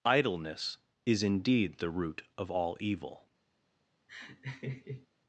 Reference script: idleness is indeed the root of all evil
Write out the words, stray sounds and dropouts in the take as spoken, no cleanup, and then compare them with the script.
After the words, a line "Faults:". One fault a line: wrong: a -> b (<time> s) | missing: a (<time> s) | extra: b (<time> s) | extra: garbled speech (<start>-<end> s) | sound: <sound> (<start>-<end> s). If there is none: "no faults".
idleness is indeed the root of all evil
Faults:
sound: laugh (4.1-5.1 s)